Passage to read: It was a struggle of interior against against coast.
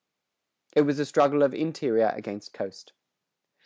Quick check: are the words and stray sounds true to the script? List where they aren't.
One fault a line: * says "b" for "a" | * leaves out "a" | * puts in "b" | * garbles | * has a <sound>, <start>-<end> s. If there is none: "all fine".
* leaves out "against"